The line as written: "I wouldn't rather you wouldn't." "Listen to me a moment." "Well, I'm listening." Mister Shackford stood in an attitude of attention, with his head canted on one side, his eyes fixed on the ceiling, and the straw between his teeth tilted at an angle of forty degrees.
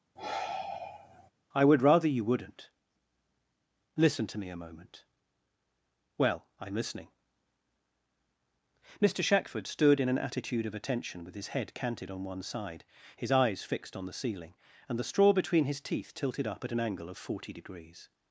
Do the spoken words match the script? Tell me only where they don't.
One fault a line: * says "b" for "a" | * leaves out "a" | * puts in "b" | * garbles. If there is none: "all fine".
* says "would" for "wouldn't"
* puts in "up"